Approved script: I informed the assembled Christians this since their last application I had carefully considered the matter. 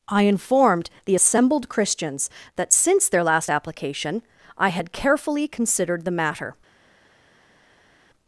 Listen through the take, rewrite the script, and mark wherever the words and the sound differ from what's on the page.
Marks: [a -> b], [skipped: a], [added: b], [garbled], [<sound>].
I informed the assembled Christians [this -> that] since their last application I had carefully considered the matter.